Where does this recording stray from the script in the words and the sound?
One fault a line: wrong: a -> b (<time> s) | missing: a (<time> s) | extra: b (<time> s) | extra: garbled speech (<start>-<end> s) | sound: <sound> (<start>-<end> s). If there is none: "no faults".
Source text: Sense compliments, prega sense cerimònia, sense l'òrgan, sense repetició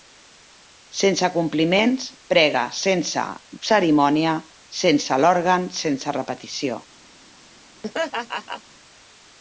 sound: laugh (7.8-8.6 s)